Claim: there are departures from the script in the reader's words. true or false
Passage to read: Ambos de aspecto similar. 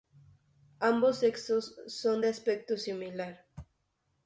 true